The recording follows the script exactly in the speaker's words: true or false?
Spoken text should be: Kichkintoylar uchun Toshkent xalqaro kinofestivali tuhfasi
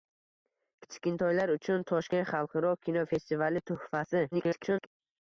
false